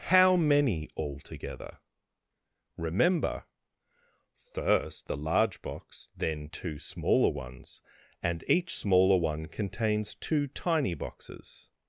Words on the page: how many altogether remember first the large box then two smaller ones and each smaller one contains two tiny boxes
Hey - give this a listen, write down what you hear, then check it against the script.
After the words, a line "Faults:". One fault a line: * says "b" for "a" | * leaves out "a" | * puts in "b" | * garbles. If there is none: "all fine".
how many altogether remember first the large box then two smaller ones and each smaller one contains two tiny boxes
Faults:
all fine